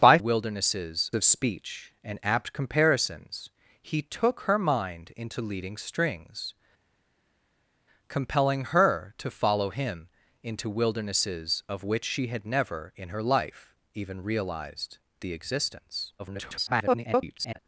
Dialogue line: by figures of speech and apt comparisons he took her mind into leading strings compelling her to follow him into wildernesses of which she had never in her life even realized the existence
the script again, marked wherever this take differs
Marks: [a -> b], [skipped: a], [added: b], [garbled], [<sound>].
by [figures -> wildernesses] of speech and apt comparisons he took her mind into leading strings compelling her to follow him into wildernesses of which she had never in her life even realized the existence [garbled]